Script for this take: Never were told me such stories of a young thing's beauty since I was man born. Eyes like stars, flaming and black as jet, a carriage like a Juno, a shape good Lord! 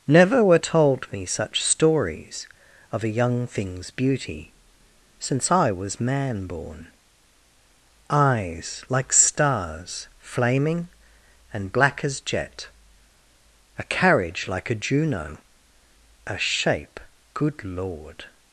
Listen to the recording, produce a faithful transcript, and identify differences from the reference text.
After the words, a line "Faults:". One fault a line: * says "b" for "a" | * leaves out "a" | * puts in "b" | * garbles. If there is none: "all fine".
Never were told me such stories of a young thing's beauty since I was man born. Eyes like stars, flaming and black as jet, a carriage like a Juno, a shape good Lord!
Faults:
all fine